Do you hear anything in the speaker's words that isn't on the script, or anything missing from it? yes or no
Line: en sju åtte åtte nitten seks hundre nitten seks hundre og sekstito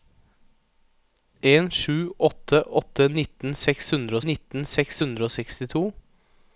no